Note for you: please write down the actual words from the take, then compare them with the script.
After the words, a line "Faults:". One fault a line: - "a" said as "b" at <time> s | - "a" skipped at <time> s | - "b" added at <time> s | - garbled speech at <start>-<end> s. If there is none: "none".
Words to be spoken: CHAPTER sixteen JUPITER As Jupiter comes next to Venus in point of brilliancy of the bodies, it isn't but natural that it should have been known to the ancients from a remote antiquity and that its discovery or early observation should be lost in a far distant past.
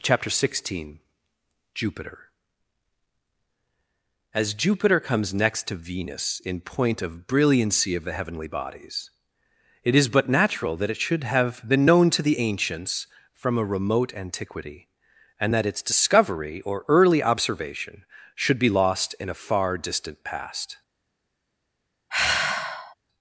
CHAPTER sixteen JUPITER As Jupiter comes next to Venus in point of brilliancy of the heavenly bodies, it is but natural that it should have been known to the ancients from a remote antiquity and that its discovery or early observation should be lost in a far distant past.
Faults:
- "heavenly" added at 8.1 s
- "isn't" said as "is" at 9.9 s